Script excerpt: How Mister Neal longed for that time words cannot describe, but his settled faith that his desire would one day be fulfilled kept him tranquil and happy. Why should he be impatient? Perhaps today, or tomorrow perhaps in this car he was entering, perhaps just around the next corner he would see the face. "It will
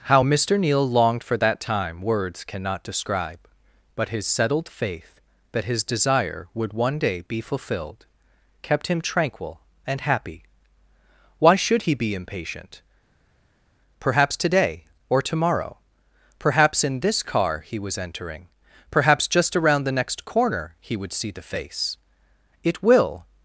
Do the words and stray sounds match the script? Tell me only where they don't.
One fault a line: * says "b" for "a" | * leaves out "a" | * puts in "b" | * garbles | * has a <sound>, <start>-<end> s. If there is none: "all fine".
all fine